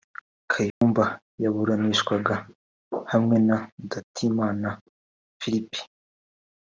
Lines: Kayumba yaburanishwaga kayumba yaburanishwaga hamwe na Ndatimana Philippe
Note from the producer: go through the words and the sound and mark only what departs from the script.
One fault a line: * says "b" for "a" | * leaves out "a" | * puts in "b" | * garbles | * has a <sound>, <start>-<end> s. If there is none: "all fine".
* has a dropout, 0.7-0.8 s
* leaves out "kayumba yaburanishwaga"